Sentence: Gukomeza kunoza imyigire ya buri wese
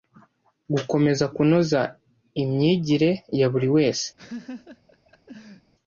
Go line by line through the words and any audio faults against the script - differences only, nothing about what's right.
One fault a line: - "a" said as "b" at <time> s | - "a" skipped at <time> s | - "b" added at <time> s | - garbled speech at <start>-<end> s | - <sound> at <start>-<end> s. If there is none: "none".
- laugh at 4.2-5.7 s